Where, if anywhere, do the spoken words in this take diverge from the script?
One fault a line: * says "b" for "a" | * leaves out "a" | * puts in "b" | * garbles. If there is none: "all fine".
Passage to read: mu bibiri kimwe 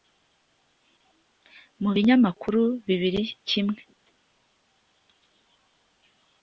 * puts in "binyamakuru"